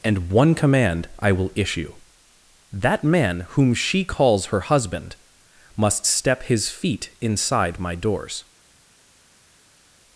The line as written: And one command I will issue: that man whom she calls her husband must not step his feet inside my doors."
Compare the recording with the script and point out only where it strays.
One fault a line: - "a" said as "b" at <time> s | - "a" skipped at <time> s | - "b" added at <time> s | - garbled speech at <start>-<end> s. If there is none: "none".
- "not" skipped at 6.0 s